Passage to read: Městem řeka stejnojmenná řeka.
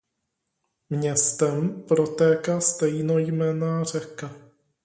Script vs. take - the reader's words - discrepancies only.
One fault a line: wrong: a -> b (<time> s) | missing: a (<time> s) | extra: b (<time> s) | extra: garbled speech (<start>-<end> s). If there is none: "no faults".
wrong: řeka -> protéká (1.9 s)